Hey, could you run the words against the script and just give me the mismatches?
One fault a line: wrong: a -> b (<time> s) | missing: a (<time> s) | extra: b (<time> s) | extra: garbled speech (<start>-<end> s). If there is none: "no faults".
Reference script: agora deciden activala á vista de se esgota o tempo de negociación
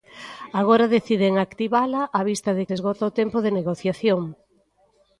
no faults